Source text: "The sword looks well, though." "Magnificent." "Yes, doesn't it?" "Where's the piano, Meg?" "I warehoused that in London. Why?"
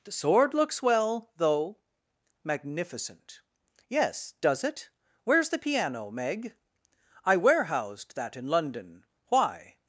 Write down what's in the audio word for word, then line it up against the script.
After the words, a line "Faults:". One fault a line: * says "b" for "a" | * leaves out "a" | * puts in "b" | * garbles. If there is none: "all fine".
"The sword looks well, though." "Magnificent." "Yes, does it?" "Where's the piano, Meg?" "I warehoused that in London. Why?"
Faults:
* says "does" for "doesn't"